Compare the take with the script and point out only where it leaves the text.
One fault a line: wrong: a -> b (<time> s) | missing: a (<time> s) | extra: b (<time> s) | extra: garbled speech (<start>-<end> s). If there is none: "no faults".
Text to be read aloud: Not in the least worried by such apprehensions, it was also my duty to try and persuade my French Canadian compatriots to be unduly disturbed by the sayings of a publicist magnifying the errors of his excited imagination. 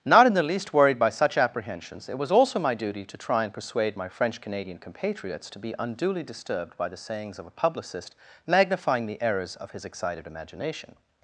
no faults